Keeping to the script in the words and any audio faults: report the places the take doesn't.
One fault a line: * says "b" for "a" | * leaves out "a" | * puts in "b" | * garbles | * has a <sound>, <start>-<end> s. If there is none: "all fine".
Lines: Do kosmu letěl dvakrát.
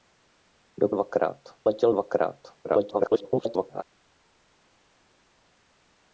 * says "dvakrát" for "kosmu"
* garbles